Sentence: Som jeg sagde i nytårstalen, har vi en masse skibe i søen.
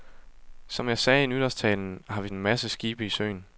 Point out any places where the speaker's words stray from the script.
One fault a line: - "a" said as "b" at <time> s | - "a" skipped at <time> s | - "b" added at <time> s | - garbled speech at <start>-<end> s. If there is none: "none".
none